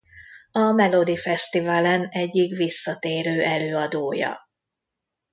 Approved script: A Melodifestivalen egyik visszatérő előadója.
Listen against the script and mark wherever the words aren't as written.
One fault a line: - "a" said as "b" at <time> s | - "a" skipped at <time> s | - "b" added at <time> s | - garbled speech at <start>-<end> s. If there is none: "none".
none